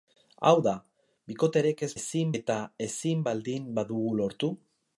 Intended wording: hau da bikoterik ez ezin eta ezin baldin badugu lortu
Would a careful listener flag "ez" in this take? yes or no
no